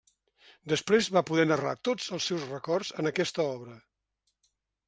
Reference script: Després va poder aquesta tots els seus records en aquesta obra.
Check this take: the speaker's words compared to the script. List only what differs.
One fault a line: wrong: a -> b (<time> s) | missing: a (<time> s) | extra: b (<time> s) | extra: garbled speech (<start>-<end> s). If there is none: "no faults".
wrong: aquesta -> narrar (1.5 s)